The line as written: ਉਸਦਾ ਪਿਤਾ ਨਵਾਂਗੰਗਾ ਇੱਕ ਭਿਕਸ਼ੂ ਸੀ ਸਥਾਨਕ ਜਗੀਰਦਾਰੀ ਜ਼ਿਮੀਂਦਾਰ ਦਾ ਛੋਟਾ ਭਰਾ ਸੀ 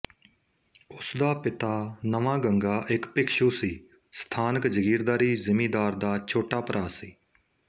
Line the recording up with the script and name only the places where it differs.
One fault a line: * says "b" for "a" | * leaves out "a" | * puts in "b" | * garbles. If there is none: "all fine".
all fine